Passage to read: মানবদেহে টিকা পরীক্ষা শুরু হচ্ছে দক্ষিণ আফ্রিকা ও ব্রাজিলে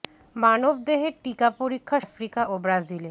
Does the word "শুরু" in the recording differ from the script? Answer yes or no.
yes